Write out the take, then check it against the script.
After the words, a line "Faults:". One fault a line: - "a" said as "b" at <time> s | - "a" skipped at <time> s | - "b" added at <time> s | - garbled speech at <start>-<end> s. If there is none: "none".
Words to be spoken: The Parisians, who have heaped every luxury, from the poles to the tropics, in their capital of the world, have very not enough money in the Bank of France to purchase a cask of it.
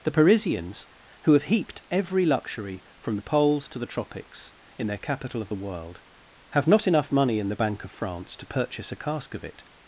The Parisians, who have heaped every luxury, from the poles to the tropics, in their capital of the world, have not enough money in the Bank of France to purchase a cask of it.
Faults:
- "very" skipped at 6.7 s